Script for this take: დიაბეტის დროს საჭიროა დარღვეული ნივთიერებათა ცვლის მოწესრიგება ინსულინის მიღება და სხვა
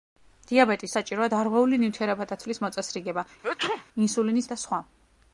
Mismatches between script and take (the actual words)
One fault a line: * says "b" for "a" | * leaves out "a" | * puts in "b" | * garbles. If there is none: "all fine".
* leaves out "დროს"
* leaves out "მიღება"